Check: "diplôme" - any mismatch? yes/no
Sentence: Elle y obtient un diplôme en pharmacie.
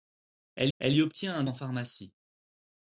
yes